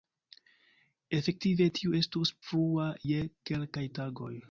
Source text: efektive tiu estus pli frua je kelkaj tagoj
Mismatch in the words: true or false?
true